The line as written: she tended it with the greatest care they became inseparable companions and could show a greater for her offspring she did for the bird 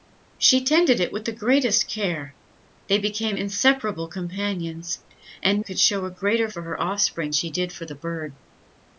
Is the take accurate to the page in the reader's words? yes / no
yes